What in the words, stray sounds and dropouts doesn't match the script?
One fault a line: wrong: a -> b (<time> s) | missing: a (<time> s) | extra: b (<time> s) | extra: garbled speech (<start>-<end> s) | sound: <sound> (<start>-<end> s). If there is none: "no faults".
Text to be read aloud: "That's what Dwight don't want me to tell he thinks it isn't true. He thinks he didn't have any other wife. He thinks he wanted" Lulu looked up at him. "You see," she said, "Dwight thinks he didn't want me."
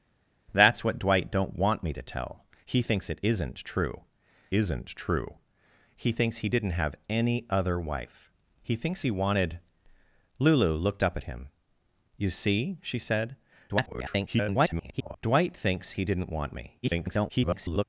extra: isn't true (4.5 s)
extra: garbled speech (13.7-15.2 s)
extra: garbled speech (16.8-17.8 s)